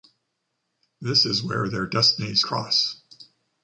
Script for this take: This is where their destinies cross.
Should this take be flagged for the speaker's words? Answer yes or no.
no